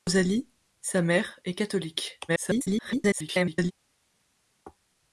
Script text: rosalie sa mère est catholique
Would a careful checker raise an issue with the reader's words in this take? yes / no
yes